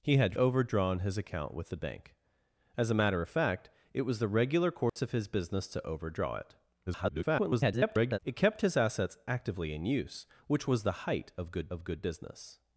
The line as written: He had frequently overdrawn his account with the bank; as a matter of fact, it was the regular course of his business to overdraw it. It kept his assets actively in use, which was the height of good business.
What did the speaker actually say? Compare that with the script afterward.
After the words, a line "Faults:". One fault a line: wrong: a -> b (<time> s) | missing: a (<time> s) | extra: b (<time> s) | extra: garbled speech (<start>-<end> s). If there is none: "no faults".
He had overdrawn his account with the bank; as a matter of fact, it was the regular course of his business to overdraw it. [garbled] It kept his assets actively in use, which was the height of good of good business.
Faults:
missing: frequently (0.3 s)
extra: garbled speech (6.9-8.2 s)
extra: of good (11.7 s)